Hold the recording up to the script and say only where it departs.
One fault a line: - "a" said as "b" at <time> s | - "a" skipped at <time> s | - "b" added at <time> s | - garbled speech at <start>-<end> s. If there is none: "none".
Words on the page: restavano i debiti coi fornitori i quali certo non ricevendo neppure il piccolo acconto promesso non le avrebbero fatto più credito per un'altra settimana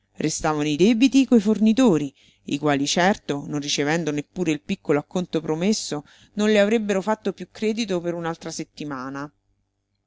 none